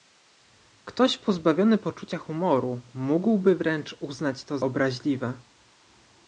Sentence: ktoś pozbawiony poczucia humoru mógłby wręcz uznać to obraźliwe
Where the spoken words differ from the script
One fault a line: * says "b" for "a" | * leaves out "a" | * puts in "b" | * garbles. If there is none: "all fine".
all fine